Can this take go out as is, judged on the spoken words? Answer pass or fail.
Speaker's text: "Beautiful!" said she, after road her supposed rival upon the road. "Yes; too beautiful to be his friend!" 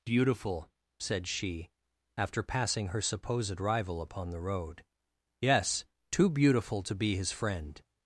fail